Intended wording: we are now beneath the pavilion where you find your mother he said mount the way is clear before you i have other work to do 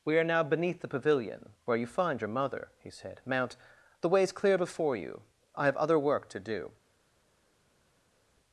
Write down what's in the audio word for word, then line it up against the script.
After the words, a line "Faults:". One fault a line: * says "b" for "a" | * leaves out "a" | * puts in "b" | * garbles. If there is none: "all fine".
we are now beneath the pavilion where you find your mother he said mount the way is clear before you i have other work to do
Faults:
all fine